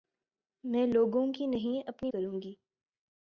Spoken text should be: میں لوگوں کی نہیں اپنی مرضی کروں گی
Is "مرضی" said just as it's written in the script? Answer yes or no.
no